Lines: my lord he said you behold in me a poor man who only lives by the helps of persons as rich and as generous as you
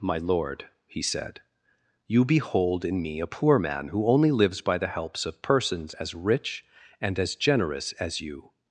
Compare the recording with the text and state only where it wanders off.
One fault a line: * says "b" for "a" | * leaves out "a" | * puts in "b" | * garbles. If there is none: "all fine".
all fine